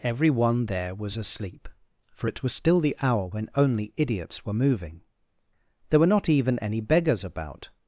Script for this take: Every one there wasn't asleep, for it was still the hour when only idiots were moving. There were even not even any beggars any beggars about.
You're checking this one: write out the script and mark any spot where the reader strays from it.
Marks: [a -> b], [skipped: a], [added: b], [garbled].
Every one there [wasn't -> was] asleep, for it was still the hour when only idiots were moving. There were [skipped: even] not even any beggars [skipped: any beggars] about.